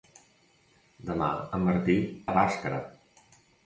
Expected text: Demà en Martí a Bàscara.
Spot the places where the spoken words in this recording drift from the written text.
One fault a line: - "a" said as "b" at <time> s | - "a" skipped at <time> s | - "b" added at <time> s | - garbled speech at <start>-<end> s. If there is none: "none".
none